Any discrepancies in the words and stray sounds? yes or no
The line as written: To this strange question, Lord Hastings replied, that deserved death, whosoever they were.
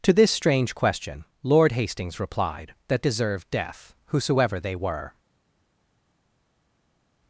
no